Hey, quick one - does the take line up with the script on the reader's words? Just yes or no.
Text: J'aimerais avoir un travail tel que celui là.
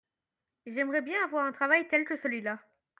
no